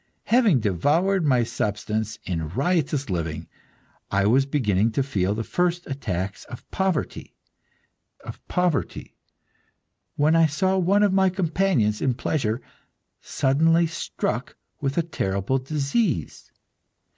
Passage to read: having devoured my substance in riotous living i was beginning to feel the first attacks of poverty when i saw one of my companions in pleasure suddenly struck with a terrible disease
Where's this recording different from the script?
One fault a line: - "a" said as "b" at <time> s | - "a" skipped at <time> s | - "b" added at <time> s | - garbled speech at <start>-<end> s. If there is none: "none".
- "of poverty" added at 8.2 s